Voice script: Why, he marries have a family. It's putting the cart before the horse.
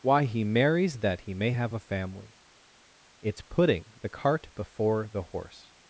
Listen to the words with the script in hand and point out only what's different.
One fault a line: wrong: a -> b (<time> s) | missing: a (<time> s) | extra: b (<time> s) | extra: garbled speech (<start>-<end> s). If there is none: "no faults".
extra: that he may (1.0 s)